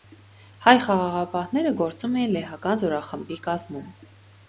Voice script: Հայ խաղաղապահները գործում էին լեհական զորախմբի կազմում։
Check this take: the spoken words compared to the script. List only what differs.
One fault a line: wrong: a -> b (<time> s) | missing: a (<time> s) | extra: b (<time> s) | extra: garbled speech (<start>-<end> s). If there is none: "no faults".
no faults